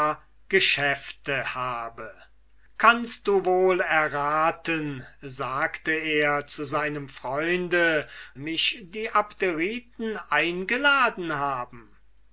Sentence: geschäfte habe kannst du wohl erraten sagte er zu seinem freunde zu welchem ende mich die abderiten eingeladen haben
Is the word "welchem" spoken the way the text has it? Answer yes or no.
no